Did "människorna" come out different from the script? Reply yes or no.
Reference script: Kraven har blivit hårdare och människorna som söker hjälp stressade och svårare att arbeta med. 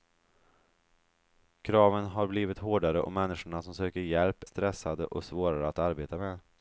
no